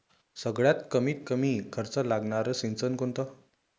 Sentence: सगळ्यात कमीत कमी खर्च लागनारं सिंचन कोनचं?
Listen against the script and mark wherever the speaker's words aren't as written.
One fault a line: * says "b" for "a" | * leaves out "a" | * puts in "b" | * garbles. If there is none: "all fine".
all fine